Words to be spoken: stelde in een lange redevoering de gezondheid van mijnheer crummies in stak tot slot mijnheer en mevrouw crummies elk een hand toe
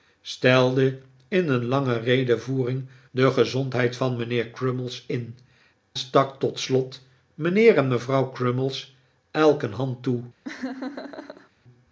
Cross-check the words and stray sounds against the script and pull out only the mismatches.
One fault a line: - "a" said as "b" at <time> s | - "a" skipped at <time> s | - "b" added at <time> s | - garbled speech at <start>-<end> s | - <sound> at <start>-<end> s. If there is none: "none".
- laugh at 10.4-11.5 s